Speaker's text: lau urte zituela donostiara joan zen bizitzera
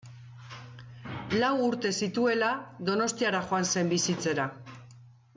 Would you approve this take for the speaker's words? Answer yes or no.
yes